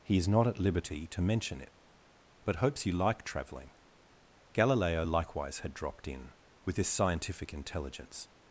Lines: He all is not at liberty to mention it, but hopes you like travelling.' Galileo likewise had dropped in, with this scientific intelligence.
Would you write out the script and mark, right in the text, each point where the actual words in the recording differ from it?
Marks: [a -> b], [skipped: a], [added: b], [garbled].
He [skipped: all] is not at liberty to mention it, but hopes you like travelling.' Galileo likewise had dropped in, with this scientific intelligence.